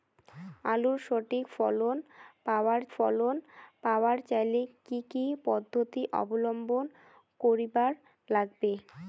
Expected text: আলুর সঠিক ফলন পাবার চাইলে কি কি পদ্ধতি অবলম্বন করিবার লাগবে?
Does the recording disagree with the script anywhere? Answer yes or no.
yes